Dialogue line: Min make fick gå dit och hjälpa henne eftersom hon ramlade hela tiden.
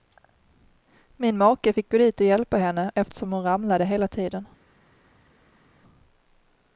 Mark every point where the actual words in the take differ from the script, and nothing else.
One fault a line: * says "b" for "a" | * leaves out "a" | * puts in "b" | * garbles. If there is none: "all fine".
all fine